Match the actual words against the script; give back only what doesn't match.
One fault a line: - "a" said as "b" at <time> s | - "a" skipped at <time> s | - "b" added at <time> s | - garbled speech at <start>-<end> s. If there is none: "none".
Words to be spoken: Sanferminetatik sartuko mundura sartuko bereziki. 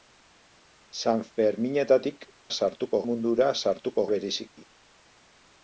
none